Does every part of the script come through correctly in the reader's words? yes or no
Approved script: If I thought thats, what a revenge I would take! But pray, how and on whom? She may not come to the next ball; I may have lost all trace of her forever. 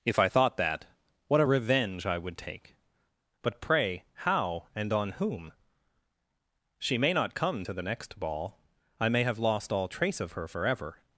no